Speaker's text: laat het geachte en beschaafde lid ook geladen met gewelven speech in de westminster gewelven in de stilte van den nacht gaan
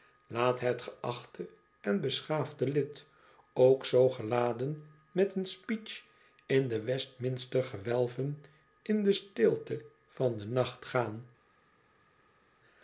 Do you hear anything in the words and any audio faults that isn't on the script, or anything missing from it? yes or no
yes